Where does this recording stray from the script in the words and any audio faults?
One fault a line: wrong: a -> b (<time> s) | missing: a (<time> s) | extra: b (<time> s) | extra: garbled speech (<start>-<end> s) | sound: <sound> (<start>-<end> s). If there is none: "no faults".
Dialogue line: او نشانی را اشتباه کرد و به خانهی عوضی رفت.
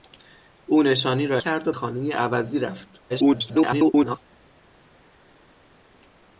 missing: اشتباه (1.4 s)
missing: به (1.7 s)
extra: garbled speech (3.1-4.2 s)